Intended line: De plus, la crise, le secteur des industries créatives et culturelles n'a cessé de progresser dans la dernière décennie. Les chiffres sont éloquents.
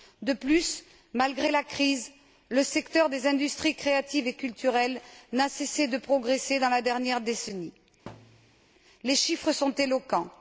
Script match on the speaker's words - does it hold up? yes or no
no